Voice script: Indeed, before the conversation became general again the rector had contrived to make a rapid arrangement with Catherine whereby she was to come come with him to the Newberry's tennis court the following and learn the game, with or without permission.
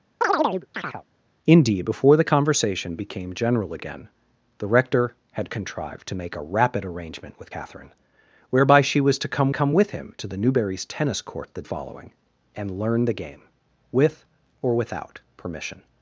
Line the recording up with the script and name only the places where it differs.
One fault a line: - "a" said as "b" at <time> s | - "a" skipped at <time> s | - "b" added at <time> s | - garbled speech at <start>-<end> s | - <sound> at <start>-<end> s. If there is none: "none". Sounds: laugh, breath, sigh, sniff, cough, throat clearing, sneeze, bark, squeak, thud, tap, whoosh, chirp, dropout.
- chirp at 0.2-1.0 s